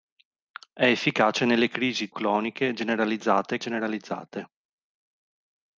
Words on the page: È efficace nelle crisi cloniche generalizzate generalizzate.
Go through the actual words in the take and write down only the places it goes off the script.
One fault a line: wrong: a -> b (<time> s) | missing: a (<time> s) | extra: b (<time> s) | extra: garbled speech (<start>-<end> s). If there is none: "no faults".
no faults